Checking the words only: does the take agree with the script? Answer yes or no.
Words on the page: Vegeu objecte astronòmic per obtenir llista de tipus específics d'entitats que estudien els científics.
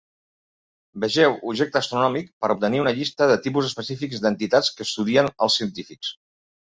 no